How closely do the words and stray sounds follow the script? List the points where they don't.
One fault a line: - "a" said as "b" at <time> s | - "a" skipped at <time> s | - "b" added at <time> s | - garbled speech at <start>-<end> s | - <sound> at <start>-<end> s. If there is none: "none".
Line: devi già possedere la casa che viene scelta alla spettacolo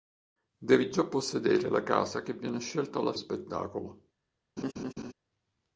- laugh at 4.6-5.1 s